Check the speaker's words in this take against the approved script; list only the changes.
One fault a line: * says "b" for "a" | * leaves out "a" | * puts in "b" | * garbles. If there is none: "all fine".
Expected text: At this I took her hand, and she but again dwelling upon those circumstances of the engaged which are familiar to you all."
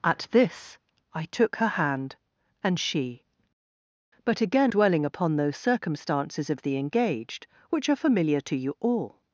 all fine